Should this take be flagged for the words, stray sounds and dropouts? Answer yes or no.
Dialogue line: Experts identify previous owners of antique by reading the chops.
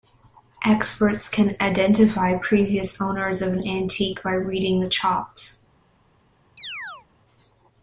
yes